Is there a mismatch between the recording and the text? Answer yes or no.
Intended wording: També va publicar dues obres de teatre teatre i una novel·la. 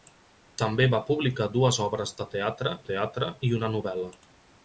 no